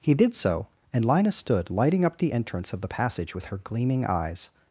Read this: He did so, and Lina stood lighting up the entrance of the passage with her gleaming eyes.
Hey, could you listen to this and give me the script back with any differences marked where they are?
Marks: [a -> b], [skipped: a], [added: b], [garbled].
He did so, and Lina stood lighting up the entrance of the passage with her gleaming eyes.